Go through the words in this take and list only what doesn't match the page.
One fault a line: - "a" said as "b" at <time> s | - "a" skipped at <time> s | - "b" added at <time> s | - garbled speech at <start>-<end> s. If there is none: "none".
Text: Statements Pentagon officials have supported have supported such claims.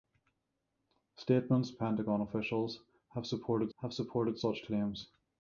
none